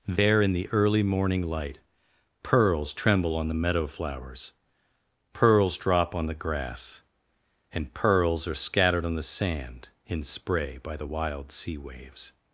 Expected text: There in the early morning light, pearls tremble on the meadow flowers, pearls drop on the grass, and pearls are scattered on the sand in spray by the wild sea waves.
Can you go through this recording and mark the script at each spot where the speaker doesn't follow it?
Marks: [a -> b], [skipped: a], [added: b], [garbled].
There in the early morning light, pearls tremble on the meadow flowers, pearls drop on the grass, and pearls are scattered on the sand in spray by the wild sea waves.